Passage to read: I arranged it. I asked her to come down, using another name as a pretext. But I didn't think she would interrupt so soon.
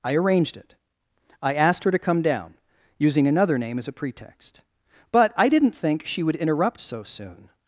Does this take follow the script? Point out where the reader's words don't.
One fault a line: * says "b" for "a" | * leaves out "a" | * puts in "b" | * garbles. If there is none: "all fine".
all fine